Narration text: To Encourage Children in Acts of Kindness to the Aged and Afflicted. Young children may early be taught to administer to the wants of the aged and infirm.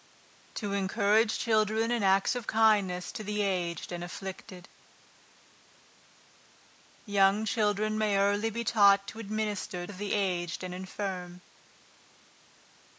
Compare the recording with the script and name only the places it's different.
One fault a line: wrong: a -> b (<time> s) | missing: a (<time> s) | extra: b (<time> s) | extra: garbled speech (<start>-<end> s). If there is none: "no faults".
missing: to the wants (9.8 s)